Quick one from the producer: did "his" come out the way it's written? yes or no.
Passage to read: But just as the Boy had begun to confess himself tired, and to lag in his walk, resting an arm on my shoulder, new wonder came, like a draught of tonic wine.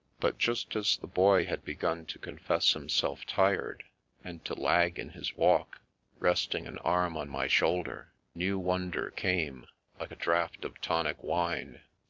yes